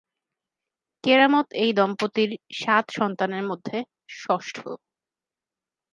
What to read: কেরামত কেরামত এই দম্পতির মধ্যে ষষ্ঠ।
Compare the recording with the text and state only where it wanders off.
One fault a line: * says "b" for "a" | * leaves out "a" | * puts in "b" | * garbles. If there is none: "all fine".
* leaves out "কেরামত"
* puts in "সাত সন্তানের"